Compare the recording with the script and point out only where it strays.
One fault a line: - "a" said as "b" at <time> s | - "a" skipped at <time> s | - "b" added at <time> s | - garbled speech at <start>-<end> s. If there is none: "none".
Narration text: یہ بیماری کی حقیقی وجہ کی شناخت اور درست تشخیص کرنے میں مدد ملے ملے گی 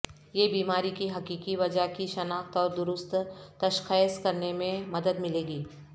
- "ملے" skipped at 5.5 s